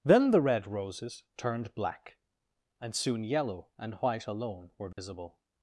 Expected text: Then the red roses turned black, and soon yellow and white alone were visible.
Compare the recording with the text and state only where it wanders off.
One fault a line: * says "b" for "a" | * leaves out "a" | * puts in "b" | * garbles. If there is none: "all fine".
all fine